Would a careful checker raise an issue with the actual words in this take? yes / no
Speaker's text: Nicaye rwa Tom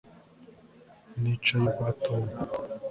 no